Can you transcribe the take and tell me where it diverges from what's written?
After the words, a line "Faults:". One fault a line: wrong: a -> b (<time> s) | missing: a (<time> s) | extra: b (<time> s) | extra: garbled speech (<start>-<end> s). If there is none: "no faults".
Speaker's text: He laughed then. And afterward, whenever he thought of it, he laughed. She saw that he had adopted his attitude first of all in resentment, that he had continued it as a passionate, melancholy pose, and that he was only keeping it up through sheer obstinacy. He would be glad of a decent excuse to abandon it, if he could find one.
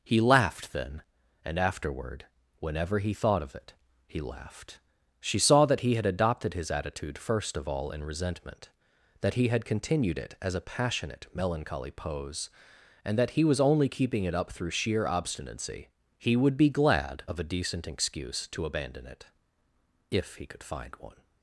He laughed then. And afterward, whenever he thought of it, he laughed. She saw that he had adopted his attitude first of all in resentment, that he had continued it as a passionate, melancholy pose, and that he was only keeping it up through sheer obstinacy. He would be glad of a decent excuse to abandon it, if he could find one.
Faults:
no faults